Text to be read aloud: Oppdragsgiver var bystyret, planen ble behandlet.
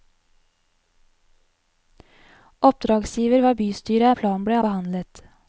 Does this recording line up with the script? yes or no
yes